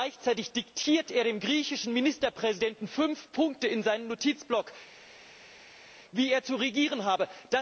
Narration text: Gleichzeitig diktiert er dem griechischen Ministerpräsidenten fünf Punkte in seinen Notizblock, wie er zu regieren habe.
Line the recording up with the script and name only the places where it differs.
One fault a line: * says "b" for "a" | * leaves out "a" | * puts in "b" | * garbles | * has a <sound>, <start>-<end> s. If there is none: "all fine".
all fine